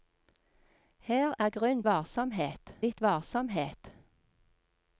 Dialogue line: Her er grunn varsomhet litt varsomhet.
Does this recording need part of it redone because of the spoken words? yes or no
no